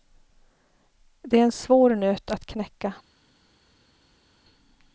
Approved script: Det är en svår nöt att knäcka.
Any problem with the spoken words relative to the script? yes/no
no